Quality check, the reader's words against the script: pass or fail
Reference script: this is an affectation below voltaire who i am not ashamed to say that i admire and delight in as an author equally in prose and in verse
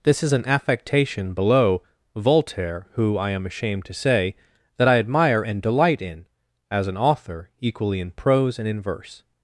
fail